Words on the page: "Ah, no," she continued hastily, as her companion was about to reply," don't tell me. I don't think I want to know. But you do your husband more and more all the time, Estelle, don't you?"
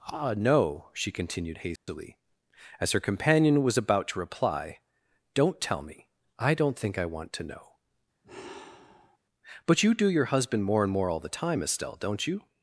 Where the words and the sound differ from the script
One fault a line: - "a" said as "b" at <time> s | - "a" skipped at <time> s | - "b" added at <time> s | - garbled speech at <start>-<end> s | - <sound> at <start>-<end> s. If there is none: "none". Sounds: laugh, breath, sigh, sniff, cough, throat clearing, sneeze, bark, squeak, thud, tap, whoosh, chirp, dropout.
- dropout at 1.8-1.9 s
- sigh at 8.2-9.2 s